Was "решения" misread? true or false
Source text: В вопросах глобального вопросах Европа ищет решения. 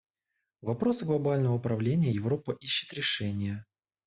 false